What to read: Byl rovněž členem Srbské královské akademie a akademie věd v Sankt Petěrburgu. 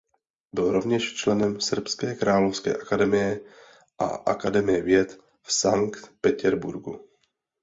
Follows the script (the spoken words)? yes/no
yes